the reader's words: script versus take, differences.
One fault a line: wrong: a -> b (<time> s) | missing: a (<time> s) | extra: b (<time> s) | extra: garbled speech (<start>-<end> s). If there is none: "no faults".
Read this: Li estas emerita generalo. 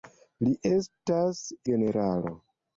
missing: emerita (1.4 s)